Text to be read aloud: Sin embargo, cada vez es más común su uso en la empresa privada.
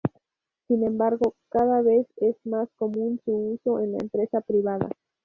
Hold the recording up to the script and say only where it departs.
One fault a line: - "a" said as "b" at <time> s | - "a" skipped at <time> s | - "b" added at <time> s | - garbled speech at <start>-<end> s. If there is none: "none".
none